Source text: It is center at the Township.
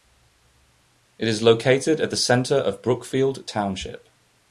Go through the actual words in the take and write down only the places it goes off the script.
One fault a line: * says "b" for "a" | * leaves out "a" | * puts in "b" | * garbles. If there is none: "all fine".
* says "located" for "center"
* puts in "center of Brookfield"